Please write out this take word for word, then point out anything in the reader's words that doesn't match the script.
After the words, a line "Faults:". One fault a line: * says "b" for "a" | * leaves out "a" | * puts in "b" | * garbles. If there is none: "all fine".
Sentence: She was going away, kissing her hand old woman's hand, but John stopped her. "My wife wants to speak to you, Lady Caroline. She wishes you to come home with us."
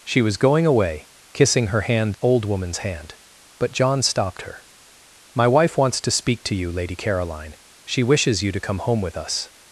She was going away, kissing her hand old woman's hand, but John stopped her. "My wife wants to speak to you, Lady Caroline. She wishes you to come home with us."
Faults:
all fine